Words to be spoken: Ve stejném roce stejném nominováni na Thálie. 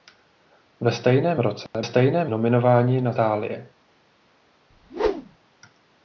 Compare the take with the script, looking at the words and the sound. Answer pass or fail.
fail